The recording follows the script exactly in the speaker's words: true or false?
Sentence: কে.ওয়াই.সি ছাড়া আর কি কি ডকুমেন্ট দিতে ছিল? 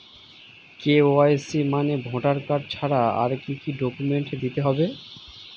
false